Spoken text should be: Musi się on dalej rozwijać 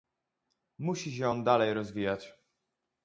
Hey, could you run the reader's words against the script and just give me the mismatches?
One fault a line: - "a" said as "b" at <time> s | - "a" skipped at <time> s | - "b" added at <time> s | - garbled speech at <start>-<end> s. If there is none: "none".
none